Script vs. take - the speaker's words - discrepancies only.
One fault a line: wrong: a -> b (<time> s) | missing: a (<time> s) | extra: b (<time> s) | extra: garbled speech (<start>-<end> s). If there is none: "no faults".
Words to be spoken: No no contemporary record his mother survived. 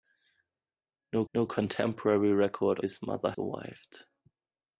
no faults